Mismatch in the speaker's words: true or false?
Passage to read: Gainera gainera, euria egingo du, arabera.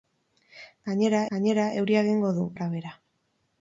false